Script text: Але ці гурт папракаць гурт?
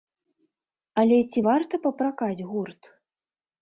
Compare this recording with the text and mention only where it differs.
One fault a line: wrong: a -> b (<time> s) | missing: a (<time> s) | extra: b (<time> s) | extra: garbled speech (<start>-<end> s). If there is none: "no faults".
wrong: гурт -> варта (1.5 s)